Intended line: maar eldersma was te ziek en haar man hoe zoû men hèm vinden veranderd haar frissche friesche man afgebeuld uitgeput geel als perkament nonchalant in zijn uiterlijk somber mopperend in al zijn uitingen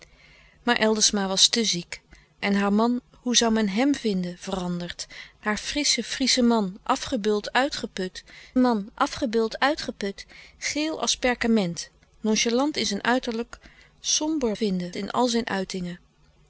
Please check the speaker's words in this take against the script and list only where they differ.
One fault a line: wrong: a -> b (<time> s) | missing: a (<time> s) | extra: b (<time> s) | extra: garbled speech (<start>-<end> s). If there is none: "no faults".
extra: man afgebeuld uitgeput (8.6 s)
wrong: mopperend -> vinden (14.5 s)